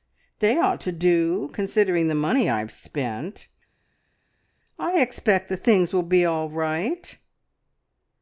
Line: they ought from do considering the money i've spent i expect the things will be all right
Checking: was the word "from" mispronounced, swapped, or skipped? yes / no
yes